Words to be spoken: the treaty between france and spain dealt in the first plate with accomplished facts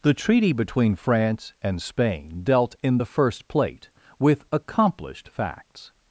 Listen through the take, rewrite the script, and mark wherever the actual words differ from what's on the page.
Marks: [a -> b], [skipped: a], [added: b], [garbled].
the treaty between france and spain dealt in the first plate with accomplished facts